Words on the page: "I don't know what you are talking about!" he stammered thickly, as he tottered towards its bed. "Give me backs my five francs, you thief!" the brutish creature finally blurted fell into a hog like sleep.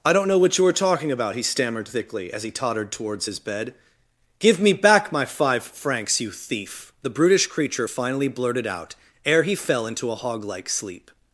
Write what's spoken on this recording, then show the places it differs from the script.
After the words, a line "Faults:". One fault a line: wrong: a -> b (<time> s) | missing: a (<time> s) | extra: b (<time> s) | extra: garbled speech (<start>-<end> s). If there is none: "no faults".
"I don't know what you are talking about!" he stammered thickly, as he tottered towards his bed. "Give me back my five francs, you thief!" the brutish creature finally blurted out ere he fell into a hog like sleep.
Faults:
wrong: its -> his (3.2 s)
wrong: backs -> back (4.7 s)
extra: out ere he (8.7 s)